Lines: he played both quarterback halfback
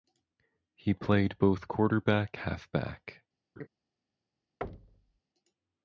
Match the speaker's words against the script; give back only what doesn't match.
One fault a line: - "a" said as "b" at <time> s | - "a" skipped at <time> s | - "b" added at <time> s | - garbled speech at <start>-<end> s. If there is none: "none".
none